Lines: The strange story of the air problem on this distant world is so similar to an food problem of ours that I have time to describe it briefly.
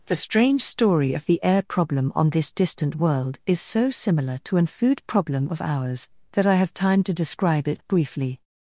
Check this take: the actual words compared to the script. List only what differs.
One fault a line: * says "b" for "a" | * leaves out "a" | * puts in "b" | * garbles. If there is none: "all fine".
all fine